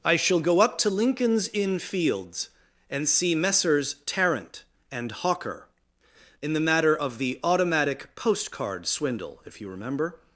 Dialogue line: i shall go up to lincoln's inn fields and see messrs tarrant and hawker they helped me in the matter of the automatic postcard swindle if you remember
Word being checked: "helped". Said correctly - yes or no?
no